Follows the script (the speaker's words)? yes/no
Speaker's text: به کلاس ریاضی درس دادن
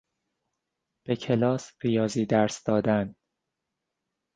yes